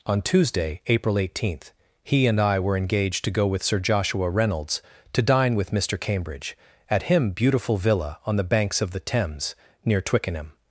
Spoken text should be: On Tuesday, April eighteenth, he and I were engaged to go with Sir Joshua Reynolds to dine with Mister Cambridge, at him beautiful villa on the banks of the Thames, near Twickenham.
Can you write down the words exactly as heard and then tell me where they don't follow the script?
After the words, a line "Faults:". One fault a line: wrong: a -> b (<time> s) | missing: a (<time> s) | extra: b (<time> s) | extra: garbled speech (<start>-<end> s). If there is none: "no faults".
On Tuesday, April eighteenth, he and I were engaged to go with Sir Joshua Reynolds to dine with Mister Cambridge, at him beautiful villa on the banks of the Thames, near Twickenham.
Faults:
no faults